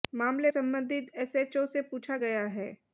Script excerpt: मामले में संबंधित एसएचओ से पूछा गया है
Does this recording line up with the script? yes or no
no